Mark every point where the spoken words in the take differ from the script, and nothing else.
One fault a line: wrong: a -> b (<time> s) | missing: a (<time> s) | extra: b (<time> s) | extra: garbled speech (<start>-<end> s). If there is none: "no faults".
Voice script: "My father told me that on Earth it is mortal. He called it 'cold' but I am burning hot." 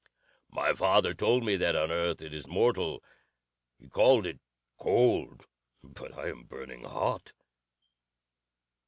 no faults